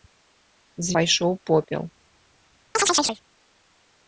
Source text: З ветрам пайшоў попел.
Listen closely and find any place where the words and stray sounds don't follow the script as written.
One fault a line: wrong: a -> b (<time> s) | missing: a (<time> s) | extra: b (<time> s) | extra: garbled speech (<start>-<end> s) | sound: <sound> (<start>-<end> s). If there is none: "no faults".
missing: ветрам (0.9 s)
sound: chirp (2.7-3.2 s)